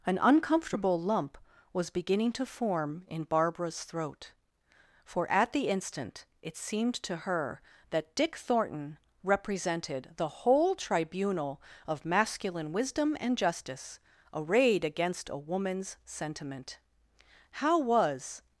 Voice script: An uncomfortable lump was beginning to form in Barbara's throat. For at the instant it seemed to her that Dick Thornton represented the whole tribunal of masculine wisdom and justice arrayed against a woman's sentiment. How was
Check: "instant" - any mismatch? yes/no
no